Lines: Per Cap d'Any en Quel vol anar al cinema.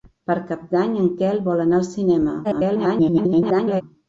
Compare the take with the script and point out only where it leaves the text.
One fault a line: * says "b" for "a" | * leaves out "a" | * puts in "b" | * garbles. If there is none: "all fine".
* garbles